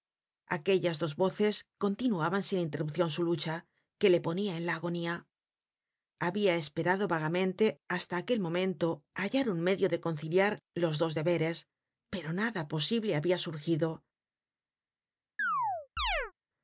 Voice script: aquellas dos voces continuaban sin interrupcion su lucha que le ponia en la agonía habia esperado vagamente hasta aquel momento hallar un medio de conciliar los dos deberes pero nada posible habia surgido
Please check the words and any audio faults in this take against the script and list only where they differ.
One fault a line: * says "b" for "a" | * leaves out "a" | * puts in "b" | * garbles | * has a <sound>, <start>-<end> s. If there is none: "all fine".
* has a chirp, 15.4-16.3 s